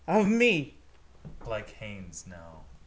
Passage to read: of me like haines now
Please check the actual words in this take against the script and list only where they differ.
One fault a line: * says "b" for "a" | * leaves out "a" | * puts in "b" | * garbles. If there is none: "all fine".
all fine